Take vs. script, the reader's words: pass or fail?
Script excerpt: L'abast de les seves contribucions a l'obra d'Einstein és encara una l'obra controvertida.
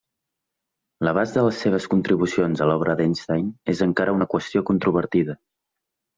fail